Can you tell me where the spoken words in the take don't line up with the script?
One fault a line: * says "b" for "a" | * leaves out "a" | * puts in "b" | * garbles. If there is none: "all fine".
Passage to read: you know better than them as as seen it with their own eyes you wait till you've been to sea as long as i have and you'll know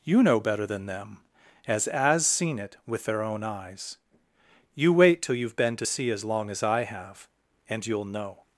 all fine